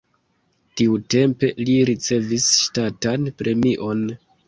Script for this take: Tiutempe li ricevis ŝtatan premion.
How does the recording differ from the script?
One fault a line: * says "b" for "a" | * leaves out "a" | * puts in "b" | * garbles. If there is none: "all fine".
all fine